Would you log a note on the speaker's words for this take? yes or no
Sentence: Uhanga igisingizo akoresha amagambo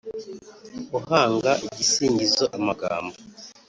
yes